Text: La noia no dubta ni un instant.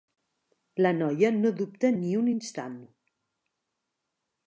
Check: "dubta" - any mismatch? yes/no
no